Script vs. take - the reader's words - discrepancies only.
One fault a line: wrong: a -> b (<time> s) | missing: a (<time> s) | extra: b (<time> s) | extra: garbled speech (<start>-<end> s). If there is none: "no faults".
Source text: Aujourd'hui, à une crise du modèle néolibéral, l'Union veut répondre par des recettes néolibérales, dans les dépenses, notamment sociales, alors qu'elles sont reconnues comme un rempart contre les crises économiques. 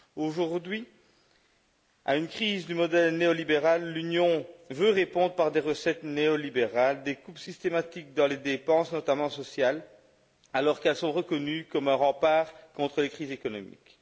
extra: des coupes systématiques (7.0 s)